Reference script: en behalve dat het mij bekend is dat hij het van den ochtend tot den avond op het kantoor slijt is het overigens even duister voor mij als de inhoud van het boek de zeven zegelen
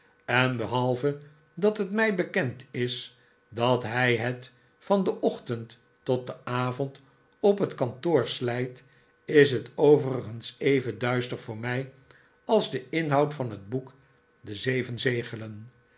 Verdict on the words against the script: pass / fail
pass